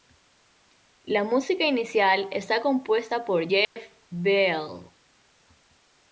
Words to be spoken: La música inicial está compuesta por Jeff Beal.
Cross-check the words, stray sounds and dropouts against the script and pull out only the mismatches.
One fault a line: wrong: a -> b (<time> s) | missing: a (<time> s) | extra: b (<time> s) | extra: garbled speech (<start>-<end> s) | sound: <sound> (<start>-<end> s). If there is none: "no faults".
sound: dropout (3.6-3.8 s)